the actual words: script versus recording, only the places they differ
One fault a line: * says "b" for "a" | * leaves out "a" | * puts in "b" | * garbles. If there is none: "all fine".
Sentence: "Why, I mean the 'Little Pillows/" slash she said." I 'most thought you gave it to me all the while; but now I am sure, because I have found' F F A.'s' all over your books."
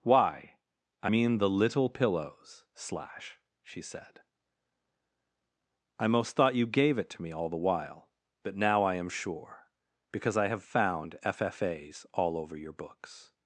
all fine